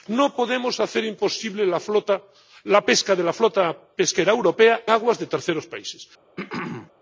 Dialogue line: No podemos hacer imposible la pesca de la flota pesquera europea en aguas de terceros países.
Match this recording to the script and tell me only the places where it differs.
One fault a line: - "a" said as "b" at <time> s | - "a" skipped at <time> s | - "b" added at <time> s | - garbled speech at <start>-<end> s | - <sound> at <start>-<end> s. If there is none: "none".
- "en" skipped at 4.8 s
- throat clearing at 6.4-6.9 s